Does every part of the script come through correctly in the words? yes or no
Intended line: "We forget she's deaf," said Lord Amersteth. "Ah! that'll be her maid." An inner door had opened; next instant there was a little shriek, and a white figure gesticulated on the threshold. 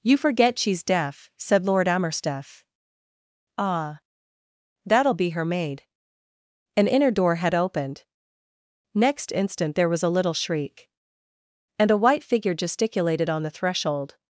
no